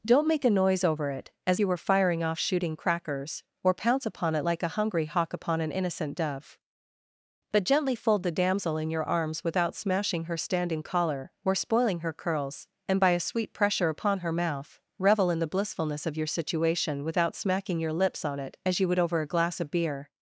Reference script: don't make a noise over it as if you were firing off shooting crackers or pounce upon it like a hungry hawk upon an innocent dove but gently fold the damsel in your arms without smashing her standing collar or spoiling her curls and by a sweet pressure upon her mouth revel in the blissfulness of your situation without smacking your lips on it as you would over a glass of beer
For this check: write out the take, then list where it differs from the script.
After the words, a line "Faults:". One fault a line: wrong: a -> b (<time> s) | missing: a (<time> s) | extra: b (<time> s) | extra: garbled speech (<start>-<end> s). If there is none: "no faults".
don't make a noise over it as you were firing off shooting crackers or pounce upon it like a hungry hawk upon an innocent dove but gently fold the damsel in your arms without smashing her standing collar or spoiling her curls and by a sweet pressure upon her mouth revel in the blissfulness of your situation without smacking your lips on it as you would over a glass of beer
Faults:
missing: if (1.6 s)